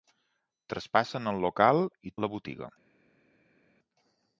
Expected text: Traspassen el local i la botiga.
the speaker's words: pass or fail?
pass